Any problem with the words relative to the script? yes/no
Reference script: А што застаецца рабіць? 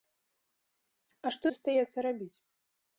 no